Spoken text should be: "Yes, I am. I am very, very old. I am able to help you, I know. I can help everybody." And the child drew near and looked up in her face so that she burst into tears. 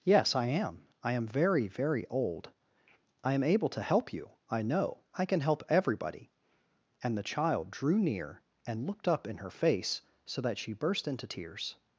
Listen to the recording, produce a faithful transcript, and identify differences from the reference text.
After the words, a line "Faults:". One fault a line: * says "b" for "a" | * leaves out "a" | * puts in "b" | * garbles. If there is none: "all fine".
"Yes, I am. I am very, very old. I am able to help you, I know. I can help everybody." And the child drew near and looked up in her face so that she burst into tears.
Faults:
all fine